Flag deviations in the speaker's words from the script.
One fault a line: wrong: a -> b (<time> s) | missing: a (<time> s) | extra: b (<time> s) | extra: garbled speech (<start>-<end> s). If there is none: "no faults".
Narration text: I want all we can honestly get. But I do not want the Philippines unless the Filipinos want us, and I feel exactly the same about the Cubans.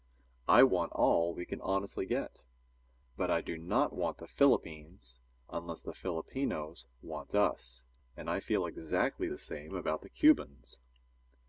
no faults